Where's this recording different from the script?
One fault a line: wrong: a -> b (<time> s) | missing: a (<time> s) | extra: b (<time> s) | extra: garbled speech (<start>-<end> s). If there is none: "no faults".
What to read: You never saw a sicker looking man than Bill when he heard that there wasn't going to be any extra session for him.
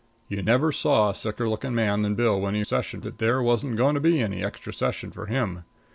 wrong: heard -> session (2.6 s)